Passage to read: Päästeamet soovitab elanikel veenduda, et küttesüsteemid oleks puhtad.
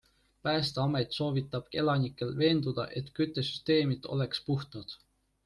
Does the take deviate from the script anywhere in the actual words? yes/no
no